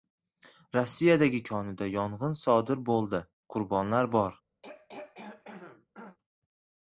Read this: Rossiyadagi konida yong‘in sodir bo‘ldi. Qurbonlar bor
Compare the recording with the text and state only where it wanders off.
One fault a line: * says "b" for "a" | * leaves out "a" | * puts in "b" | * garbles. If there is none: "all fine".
all fine